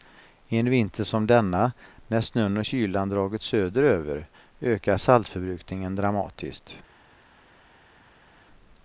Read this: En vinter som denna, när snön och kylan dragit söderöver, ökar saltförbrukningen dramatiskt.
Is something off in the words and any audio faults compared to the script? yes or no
no